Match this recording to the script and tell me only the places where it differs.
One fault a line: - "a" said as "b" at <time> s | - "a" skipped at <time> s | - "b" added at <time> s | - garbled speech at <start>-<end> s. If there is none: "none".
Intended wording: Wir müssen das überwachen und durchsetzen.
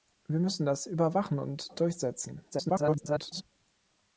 - garbled speech at 2.5-3.4 s